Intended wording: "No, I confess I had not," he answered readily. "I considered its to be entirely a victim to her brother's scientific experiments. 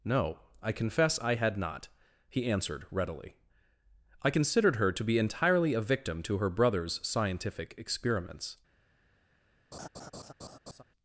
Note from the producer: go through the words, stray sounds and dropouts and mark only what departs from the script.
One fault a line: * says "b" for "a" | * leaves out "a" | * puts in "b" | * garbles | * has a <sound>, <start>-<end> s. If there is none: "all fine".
* says "her" for "its"
* has a laugh, 9.7-10.8 s